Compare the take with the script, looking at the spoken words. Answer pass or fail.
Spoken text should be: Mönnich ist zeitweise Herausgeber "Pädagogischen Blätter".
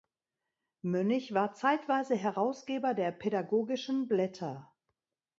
fail